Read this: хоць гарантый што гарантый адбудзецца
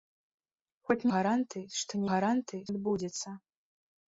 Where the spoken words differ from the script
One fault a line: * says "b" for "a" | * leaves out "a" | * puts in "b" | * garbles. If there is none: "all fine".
all fine